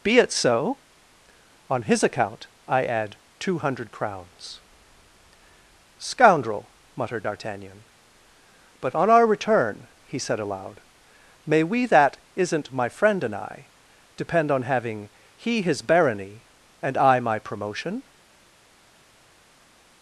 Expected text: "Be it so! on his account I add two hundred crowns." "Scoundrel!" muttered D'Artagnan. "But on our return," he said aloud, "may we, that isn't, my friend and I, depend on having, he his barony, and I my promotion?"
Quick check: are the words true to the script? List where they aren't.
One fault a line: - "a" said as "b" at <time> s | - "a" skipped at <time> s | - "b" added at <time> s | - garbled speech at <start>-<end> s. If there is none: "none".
none